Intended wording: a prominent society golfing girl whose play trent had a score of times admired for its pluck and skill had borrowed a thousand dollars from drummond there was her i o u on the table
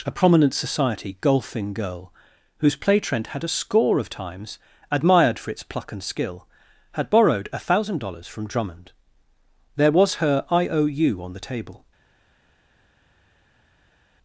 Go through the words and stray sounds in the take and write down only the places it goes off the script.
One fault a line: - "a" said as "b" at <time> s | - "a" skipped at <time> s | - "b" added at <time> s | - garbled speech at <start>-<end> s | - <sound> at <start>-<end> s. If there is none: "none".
none